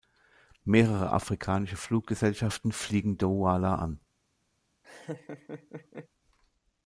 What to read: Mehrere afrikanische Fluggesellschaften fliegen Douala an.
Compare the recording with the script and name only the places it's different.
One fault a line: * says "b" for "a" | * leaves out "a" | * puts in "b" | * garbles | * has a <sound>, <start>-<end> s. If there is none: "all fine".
* has a laugh, 4.8-6.1 s